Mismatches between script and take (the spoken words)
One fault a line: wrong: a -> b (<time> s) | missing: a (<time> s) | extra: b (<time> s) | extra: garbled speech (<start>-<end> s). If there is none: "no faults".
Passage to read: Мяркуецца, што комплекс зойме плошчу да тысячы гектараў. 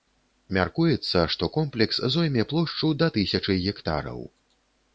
no faults